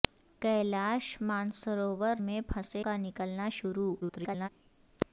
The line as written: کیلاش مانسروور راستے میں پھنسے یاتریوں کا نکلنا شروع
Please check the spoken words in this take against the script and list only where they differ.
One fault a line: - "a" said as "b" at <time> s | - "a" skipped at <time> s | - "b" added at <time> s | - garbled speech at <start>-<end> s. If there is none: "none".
- "راستے" skipped at 2.1 s
- "یاتریوں" skipped at 2.8 s
- garbled speech at 4.0-4.5 s